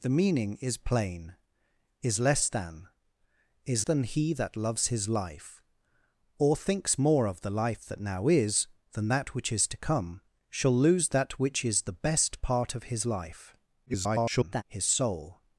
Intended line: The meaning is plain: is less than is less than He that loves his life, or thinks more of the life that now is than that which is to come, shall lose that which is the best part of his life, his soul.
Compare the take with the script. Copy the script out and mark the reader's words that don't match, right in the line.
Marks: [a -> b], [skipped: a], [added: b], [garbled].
The meaning is plain: is less than is [skipped: less] than He that loves his life, or thinks more of the life that now is than that which is to come, shall lose that which is the best part of his life, [garbled] his soul.